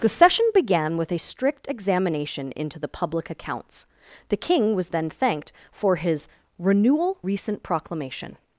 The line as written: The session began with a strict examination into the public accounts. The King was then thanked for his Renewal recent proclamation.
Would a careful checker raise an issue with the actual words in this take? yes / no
no